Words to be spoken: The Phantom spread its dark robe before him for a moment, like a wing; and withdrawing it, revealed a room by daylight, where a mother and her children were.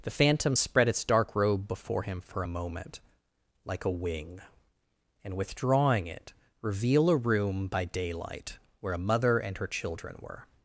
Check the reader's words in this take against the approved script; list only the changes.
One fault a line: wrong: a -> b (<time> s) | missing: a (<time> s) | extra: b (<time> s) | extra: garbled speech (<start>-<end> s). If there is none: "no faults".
wrong: revealed -> reveal (6.6 s)